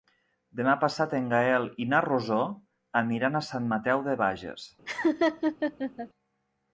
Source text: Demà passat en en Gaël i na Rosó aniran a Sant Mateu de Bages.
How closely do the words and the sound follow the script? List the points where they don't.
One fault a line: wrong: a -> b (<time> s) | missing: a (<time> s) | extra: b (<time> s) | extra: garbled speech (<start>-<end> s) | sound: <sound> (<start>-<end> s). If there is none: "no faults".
missing: en (1.3 s)
sound: laugh (4.9-6.1 s)